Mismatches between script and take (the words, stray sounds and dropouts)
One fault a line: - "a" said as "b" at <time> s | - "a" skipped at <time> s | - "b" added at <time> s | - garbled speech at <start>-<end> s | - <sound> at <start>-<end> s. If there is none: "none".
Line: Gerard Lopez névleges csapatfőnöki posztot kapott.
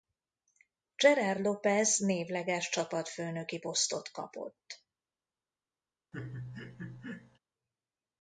- laugh at 6.1-7.4 s